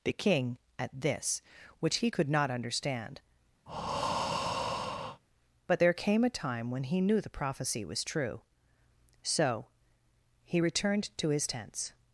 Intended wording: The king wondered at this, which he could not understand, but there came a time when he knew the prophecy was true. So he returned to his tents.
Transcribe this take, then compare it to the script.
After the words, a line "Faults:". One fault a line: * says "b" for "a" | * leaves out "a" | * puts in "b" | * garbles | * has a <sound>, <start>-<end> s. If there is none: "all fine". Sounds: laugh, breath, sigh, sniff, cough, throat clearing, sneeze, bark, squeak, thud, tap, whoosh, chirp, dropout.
The king at this, which he could not understand, but there came a time when he knew the prophecy was true. So he returned to his tents.
Faults:
* leaves out "wondered"
* has a breath, 3.7-5.2 s